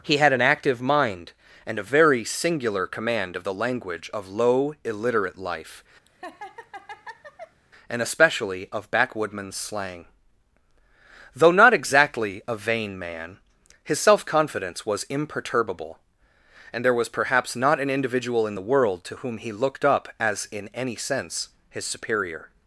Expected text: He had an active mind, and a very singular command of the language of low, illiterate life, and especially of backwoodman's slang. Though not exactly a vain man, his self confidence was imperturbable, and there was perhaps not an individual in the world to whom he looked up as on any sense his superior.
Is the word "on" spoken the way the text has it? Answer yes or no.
no